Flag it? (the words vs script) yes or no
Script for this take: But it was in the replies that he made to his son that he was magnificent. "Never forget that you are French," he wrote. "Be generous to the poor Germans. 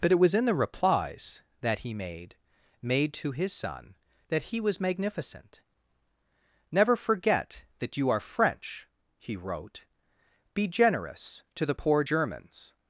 yes